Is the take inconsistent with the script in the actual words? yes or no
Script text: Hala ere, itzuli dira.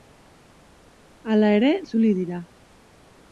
no